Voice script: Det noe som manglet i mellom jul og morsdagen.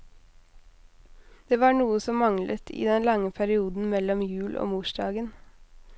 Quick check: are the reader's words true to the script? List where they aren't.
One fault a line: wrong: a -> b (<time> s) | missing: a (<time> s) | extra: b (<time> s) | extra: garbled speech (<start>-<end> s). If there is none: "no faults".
extra: var (1.6 s)
extra: den lange perioden (2.8 s)